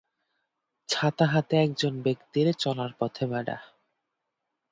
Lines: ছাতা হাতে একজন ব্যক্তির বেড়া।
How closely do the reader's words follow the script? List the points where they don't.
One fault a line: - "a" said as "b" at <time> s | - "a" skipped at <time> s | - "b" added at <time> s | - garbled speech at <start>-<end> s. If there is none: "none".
- "চলার পথে" added at 2.5 s